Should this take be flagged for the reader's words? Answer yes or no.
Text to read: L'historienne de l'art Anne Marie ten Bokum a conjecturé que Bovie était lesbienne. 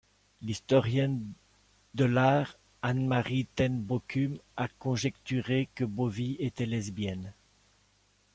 no